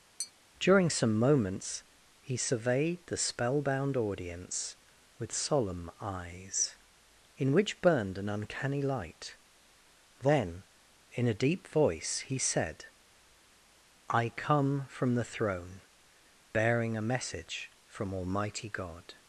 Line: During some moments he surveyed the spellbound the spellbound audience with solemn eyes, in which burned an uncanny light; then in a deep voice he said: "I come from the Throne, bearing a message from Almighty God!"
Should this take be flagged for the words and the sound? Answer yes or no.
yes